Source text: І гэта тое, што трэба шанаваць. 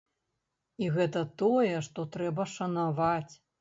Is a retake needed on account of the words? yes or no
no